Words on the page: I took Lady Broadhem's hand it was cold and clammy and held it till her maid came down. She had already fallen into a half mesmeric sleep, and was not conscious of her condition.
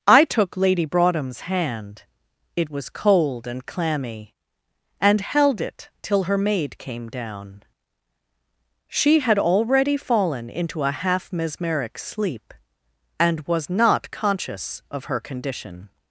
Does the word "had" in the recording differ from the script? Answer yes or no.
no